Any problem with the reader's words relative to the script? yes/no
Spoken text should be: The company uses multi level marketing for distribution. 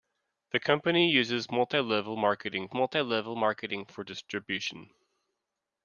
yes